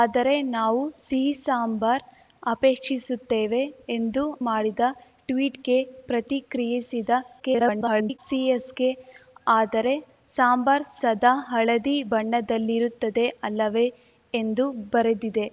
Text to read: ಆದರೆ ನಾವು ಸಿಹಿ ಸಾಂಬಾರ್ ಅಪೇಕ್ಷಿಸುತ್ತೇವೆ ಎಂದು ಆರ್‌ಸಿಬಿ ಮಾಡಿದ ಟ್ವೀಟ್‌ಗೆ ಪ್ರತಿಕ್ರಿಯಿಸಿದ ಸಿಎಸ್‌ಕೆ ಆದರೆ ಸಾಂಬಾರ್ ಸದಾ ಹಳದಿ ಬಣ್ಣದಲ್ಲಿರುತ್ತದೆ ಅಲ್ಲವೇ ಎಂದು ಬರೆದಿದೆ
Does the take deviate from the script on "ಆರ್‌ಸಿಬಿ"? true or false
true